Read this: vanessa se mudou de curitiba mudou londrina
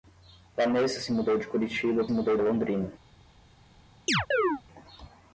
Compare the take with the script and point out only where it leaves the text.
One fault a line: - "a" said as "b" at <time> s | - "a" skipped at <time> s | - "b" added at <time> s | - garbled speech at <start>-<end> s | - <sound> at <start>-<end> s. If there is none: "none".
- chirp at 4.1-4.6 s